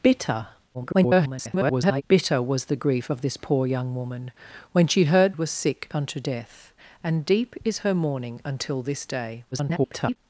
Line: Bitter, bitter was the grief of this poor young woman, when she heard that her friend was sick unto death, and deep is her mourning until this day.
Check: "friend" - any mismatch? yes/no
yes